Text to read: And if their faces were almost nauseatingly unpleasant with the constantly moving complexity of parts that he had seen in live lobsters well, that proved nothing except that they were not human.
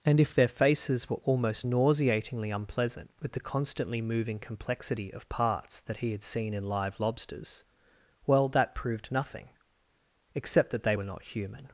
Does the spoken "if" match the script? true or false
true